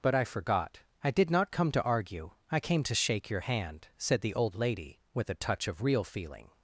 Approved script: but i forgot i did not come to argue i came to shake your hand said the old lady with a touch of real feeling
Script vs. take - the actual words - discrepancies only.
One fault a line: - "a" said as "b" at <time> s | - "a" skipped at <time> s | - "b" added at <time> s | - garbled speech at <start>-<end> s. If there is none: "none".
none